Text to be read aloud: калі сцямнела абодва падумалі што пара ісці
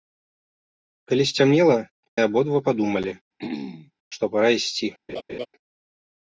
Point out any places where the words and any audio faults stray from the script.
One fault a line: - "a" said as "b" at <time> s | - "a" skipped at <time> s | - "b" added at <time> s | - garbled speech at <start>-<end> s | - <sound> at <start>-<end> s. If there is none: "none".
- throat clearing at 3.4-3.9 s
- laugh at 5.1-5.5 s